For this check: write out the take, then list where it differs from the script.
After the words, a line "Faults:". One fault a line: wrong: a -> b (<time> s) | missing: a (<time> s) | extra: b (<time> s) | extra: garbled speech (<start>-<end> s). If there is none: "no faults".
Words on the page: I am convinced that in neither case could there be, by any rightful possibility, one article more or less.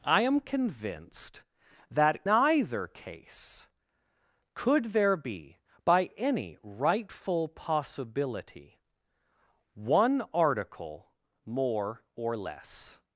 I am convinced that neither case could there be, by any rightful possibility, one article more or less.
Faults:
missing: in (2.2 s)